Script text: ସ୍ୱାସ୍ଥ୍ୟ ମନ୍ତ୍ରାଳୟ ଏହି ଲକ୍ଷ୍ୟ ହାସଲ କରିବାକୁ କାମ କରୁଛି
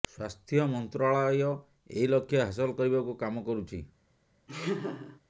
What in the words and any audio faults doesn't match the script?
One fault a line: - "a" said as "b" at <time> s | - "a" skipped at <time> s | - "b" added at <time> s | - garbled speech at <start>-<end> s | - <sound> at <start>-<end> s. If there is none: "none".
- laugh at 4.5-5.2 s